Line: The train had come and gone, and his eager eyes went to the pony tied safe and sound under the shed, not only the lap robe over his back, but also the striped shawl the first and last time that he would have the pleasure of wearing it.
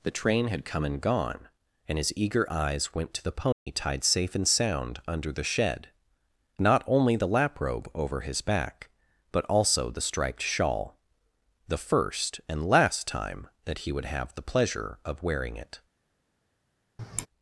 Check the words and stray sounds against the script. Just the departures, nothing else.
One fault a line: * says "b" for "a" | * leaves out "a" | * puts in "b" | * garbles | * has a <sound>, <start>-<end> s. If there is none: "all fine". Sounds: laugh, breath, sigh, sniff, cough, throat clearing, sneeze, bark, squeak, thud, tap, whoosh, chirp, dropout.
* has a dropout, 3.5-3.7 s
* has a sigh, 17.0-17.3 s